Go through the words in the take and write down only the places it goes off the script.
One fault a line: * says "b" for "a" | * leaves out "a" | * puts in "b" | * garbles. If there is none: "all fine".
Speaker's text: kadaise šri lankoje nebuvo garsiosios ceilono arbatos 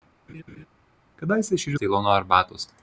* leaves out "lankoje nebuvo garsiosios"